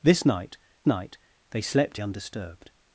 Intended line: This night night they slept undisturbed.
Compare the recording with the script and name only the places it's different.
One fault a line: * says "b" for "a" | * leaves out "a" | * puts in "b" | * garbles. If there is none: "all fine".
all fine